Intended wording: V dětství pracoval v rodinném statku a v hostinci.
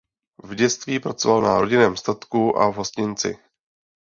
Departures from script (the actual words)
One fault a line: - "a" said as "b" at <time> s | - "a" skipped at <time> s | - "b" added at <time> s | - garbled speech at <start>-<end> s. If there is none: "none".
- "v" said as "na" at 1.4 s